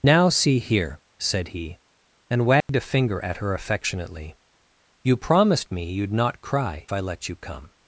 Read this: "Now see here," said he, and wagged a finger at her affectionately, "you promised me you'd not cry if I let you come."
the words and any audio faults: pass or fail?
fail